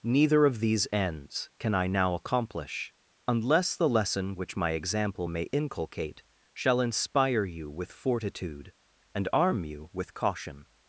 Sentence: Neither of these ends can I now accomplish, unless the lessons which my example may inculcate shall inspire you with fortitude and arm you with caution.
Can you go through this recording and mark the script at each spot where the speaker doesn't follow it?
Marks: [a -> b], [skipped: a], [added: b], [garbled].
Neither of these ends can I now accomplish, unless the [lessons -> lesson] which my example may inculcate shall inspire you with fortitude and arm you with caution.